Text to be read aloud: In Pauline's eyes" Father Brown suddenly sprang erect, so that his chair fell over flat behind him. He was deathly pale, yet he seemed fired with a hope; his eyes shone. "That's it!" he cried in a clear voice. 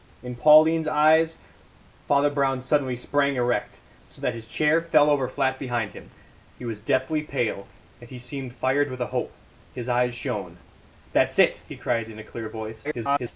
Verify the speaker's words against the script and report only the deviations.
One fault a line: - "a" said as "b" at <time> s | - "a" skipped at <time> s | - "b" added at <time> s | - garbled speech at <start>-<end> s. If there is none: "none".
- garbled speech at 12.8-13.3 s